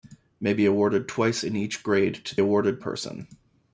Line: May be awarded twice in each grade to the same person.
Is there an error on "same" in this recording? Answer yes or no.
yes